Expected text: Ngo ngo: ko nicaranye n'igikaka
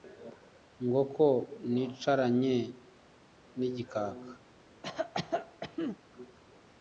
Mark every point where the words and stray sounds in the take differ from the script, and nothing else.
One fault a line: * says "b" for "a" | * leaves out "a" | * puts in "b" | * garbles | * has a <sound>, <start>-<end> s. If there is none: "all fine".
* leaves out "ngo"
* has a cough, 4.8-6.0 s